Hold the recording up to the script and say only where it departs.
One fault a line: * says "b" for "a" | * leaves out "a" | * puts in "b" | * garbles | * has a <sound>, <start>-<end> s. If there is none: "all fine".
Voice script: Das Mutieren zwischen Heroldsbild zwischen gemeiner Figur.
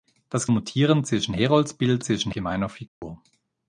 * has a dropout, 2.9-3.0 s